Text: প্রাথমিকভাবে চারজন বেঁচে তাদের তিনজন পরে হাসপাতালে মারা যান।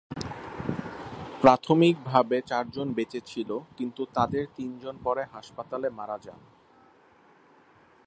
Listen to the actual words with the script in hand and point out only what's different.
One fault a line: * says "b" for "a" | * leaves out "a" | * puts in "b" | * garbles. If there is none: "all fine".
* puts in "ছিল কিন্তু"